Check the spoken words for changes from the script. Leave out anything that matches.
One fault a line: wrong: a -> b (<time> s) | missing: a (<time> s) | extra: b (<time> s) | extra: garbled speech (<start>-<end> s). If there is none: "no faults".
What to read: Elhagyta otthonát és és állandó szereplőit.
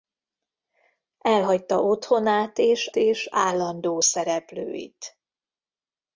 no faults